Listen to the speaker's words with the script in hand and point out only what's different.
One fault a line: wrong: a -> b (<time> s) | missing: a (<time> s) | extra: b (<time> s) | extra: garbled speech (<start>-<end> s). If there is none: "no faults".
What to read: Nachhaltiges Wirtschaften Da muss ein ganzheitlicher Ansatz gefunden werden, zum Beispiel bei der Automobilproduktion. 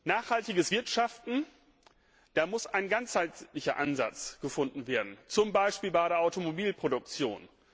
no faults